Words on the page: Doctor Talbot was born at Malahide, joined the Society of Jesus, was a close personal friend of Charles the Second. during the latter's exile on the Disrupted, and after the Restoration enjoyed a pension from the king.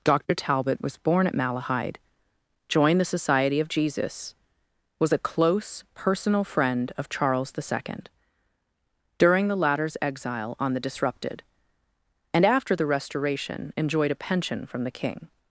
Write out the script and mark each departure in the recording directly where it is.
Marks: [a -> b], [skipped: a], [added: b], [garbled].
Doctor Talbot was born at Malahide, joined the Society of Jesus, was a close personal friend of Charles the Second. during the latter's exile on the Disrupted, and after the Restoration enjoyed a pension from the king.